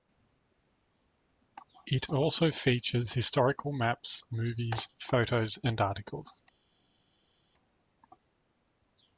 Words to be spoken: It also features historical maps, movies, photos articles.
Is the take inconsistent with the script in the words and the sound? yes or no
yes